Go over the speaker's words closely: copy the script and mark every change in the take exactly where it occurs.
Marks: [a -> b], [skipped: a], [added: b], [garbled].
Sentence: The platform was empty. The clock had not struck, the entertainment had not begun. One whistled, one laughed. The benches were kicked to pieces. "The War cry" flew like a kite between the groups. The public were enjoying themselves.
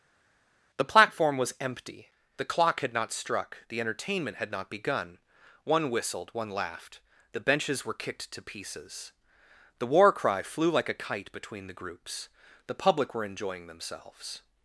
The platform was empty. The clock had not struck, the entertainment had not begun. One whistled, one laughed. The benches were kicked to pieces. "The War cry" flew like a kite between the groups. The public were enjoying themselves.